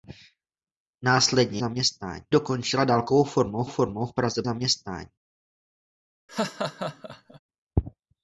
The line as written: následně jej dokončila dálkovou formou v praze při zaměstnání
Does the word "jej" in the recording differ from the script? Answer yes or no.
yes